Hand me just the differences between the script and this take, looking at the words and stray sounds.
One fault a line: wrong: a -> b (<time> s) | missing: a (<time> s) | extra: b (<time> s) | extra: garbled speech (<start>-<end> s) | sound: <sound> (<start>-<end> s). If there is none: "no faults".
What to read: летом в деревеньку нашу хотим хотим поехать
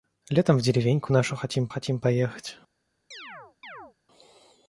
sound: chirp (3.1-3.9 s)